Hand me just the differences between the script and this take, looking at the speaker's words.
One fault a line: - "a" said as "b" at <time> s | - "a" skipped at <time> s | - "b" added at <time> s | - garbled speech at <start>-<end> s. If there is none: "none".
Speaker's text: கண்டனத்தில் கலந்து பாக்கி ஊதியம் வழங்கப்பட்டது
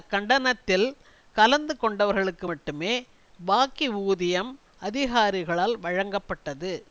- "கொண்டவர்களுக்கு மட்டுமே" added at 1.8 s
- "அதிகாரிகளால்" added at 4.8 s